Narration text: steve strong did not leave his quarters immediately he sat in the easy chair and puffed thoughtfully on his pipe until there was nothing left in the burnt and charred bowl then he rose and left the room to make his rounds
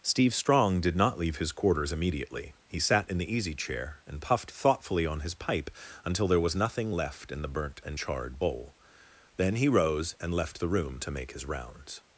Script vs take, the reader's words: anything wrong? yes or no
no